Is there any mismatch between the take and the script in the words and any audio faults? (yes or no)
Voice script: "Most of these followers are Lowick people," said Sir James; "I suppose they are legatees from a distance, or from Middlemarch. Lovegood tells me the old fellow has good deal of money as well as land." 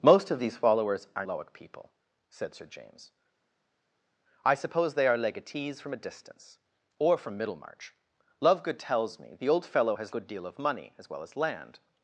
no